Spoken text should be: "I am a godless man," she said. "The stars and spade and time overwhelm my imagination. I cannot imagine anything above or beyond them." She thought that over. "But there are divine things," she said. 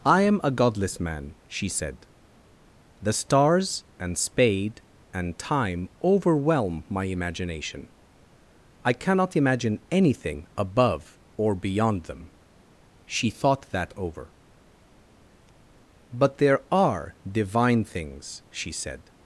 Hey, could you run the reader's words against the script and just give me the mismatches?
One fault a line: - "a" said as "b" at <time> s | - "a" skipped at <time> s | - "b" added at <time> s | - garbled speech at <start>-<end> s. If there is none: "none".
none